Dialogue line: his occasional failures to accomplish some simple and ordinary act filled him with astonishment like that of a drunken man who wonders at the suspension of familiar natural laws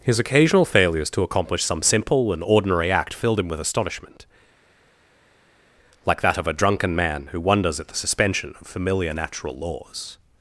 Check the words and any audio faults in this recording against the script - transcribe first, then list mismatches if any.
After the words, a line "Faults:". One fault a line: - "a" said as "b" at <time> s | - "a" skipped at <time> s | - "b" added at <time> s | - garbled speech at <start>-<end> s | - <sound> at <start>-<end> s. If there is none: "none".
his occasional failures to accomplish some simple and ordinary act filled him with astonishment like that of a drunken man who wonders at the suspension of familiar natural laws
Faults:
none